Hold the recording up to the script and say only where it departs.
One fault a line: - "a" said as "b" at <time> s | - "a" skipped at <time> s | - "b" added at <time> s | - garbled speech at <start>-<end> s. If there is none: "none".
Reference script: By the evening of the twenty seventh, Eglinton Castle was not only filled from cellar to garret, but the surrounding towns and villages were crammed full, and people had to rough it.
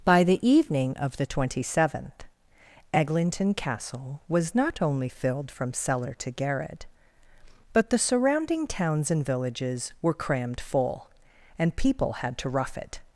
none